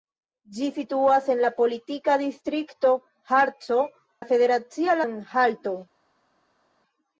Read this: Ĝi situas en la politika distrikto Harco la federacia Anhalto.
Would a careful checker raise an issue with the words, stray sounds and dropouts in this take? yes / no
no